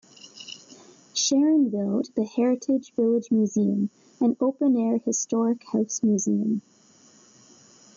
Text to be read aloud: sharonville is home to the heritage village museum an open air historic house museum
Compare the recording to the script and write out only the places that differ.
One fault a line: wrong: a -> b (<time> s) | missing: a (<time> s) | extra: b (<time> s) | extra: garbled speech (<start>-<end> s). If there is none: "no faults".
missing: is home (2.0 s)